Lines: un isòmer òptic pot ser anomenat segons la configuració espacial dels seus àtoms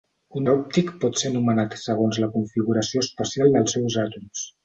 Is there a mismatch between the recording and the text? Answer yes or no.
yes